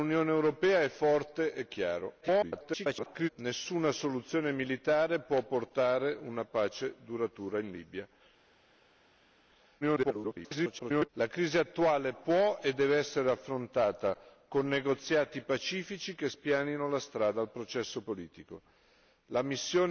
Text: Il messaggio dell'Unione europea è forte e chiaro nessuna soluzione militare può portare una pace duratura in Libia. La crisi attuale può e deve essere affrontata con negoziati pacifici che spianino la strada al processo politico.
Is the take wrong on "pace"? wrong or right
right